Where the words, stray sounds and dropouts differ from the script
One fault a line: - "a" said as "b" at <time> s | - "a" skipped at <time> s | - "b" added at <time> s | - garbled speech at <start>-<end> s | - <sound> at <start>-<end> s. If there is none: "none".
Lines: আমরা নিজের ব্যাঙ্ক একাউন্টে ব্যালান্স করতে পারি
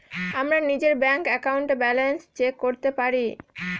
- "চেক" added at 2.4 s